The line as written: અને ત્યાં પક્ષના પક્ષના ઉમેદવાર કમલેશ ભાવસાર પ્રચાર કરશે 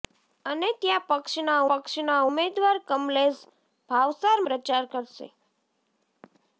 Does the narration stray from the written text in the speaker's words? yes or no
no